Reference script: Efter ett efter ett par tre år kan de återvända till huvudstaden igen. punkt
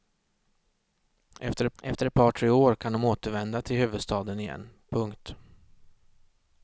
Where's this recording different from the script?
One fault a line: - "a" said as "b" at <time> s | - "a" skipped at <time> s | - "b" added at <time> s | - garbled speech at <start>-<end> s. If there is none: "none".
none